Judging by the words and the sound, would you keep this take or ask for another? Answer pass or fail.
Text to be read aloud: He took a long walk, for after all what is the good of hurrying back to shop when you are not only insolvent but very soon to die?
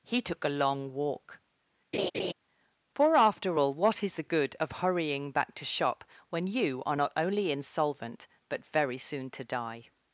fail